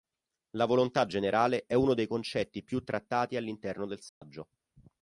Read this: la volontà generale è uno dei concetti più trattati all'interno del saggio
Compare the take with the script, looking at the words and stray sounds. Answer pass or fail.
fail